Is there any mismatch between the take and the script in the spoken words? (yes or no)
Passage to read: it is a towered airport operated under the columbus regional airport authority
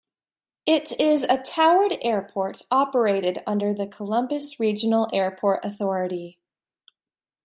no